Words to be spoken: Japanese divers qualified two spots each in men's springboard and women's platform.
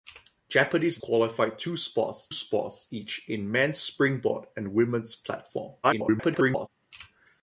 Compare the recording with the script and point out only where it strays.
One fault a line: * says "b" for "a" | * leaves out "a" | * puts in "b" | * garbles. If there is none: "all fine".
* leaves out "divers"
* puts in "spots"
* garbles